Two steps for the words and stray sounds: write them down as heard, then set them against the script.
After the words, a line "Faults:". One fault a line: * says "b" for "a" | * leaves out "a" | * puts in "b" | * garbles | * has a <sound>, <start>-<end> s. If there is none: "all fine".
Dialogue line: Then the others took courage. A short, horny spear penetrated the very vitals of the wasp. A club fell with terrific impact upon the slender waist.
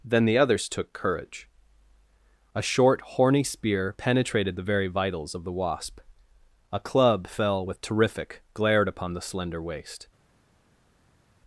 Then the others took courage. A short, horny spear penetrated the very vitals of the wasp. A club fell with terrific glared upon the slender waist.
Faults:
* says "glared" for "impact"